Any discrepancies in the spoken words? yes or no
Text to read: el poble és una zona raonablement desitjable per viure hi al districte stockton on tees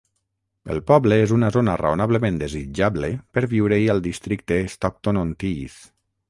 no